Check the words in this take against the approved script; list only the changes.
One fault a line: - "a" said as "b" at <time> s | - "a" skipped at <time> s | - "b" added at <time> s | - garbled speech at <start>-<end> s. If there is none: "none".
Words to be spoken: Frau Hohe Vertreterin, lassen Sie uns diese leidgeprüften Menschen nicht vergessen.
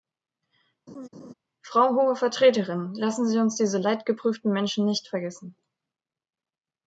none